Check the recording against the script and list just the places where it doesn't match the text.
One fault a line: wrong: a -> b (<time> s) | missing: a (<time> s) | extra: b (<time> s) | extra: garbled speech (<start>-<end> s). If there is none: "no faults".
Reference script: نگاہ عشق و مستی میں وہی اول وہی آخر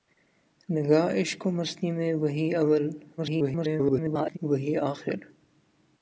extra: garbled speech (3.2-4.4 s)